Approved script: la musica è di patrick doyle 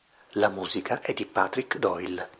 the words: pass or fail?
pass